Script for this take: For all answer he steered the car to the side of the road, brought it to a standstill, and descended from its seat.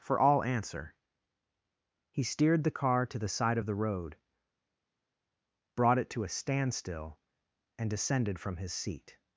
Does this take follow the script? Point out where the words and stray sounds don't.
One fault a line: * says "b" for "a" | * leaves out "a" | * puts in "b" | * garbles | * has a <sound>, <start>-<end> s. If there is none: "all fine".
* says "his" for "its"